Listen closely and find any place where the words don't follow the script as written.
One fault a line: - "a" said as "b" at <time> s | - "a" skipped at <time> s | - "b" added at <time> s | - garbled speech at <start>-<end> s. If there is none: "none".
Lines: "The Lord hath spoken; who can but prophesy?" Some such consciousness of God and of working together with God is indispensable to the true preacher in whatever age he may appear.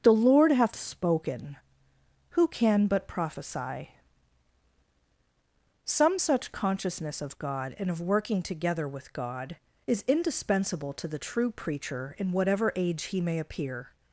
none